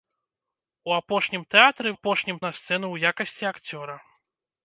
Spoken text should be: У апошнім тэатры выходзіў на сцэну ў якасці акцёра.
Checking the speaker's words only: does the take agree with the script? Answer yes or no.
no